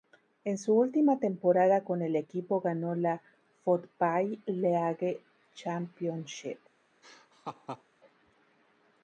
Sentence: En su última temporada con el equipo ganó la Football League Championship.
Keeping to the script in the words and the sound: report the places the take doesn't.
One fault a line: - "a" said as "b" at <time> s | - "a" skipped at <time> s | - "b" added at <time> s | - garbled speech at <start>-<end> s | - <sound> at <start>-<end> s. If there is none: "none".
- laugh at 7.0-7.8 s